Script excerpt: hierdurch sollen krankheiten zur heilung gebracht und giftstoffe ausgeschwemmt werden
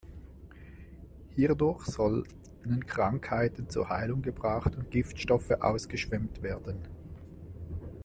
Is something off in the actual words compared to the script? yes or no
no